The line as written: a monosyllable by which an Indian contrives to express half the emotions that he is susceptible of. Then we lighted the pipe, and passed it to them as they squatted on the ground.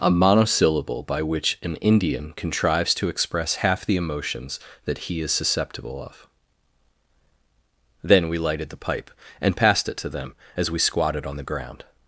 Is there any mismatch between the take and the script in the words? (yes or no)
yes